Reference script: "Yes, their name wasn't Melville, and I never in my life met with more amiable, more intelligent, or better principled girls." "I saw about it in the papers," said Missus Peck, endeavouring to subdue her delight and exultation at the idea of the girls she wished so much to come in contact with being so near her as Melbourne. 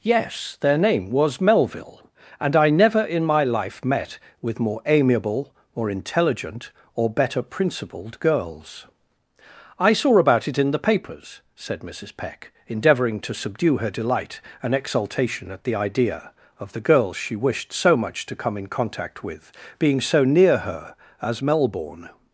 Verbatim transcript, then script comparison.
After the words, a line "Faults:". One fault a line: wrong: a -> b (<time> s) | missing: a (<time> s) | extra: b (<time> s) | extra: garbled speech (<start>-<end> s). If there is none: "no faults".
"Yes, their name was Melville, and I never in my life met with more amiable, more intelligent, or better principled girls." "I saw about it in the papers," said Missus Peck, endeavouring to subdue her delight and exultation at the idea of the girls she wished so much to come in contact with being so near her as Melbourne.
Faults:
wrong: wasn't -> was (1.1 s)